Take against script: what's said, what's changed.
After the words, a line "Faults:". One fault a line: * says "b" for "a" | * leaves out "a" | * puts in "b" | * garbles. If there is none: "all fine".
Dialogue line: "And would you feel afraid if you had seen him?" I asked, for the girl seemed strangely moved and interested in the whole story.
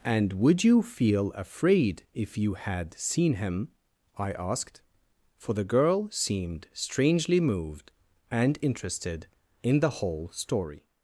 "And would you feel afraid if you had seen him?" I asked, for the girl seemed strangely moved and interested in the whole story.
Faults:
all fine